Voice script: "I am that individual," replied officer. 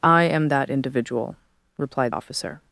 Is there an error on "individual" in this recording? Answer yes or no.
no